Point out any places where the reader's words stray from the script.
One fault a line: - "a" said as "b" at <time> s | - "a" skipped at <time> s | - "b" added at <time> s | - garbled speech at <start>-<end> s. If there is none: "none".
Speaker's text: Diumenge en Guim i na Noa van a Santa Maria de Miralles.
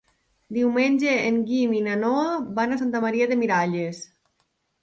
none